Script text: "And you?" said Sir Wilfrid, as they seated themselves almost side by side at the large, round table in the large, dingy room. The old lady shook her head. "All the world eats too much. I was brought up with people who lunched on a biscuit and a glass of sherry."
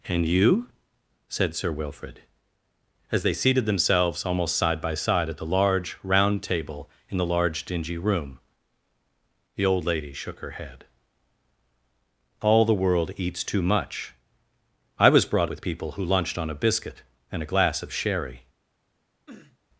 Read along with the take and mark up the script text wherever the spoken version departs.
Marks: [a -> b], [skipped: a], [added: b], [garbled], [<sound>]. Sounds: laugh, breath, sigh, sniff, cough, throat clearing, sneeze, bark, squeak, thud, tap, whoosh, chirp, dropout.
"And you?" said Sir Wilfrid, as they seated themselves almost side by side at the large, round table in the large, dingy room. The old lady shook her head. "All the world eats too much. I was brought [skipped: up] with people who lunched on a biscuit and a glass of sherry." [sniff]